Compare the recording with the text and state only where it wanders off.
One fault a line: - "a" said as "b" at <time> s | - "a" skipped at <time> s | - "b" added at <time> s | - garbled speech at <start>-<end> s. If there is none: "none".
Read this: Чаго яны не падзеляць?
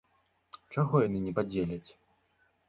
none